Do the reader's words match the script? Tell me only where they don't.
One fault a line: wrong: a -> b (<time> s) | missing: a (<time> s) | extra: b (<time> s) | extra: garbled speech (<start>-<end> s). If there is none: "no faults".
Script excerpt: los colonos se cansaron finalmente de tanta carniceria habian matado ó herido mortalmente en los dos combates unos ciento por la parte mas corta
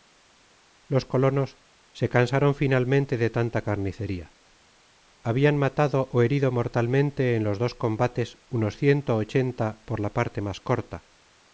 extra: ochenta (9.2 s)